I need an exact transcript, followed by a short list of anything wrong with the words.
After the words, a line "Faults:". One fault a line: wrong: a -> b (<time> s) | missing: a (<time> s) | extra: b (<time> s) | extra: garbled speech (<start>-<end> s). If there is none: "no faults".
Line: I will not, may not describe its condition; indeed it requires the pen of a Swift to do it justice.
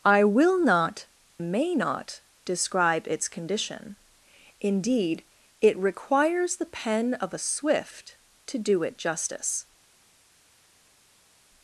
I will not, may not describe its condition; indeed it requires the pen of a Swift to do it justice.
Faults:
no faults